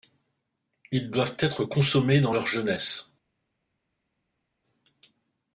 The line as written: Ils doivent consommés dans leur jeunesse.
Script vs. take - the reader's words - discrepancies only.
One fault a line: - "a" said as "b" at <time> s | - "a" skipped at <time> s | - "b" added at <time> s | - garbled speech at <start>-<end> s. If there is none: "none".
- "être" added at 1.4 s